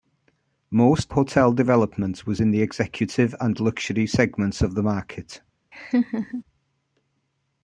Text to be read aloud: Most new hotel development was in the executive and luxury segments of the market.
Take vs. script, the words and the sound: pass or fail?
fail